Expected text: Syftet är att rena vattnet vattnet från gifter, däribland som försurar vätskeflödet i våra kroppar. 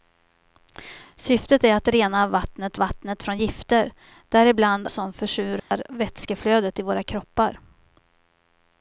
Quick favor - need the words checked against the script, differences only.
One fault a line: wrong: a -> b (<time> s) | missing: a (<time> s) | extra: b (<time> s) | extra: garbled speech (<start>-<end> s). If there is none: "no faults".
no faults